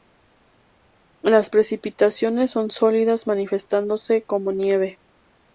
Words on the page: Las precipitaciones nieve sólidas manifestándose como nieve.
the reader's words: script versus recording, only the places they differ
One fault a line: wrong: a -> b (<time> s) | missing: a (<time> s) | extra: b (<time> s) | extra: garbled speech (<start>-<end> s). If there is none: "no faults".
wrong: nieve -> son (2.5 s)